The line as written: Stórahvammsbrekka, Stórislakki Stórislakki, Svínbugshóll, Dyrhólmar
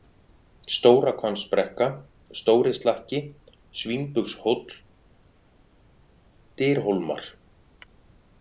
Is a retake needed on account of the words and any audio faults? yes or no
yes